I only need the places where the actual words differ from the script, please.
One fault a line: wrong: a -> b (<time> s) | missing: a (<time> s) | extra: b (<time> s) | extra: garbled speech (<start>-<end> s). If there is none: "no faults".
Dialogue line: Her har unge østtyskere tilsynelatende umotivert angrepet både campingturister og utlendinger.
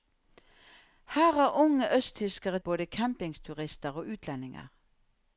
missing: tilsynelatende umotivert angrepet (2.6 s)